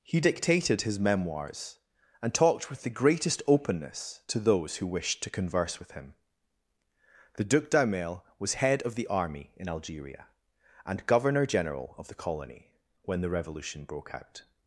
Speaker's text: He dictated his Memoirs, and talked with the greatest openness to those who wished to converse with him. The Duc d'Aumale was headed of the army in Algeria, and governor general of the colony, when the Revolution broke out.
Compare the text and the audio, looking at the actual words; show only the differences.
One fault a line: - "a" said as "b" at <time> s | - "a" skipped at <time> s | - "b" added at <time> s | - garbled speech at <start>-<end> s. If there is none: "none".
- "headed" said as "head" at 8.5 s